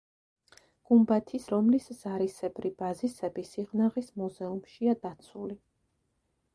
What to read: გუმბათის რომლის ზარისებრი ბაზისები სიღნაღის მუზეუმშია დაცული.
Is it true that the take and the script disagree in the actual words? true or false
false